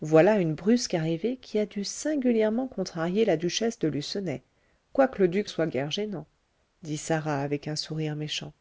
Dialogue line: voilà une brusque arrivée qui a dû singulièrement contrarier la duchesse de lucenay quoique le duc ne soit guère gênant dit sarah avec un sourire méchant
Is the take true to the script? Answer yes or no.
no